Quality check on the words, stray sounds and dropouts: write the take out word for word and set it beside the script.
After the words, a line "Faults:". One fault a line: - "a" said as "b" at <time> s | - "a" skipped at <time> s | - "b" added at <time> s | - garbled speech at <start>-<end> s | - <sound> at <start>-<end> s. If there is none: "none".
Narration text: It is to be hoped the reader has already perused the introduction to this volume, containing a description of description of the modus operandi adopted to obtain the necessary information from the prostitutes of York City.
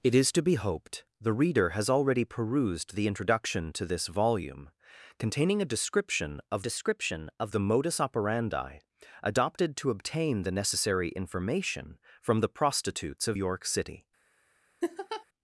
It is to be hoped the reader has already perused the introduction to this volume, containing a description of description of the modus operandi adopted to obtain the necessary information from the prostitutes of York City.
Faults:
- laugh at 14.8-15.2 s